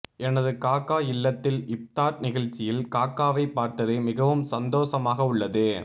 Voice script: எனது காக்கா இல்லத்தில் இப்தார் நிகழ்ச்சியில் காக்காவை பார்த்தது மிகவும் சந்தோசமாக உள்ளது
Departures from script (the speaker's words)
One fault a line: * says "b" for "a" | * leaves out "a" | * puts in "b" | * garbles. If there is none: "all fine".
all fine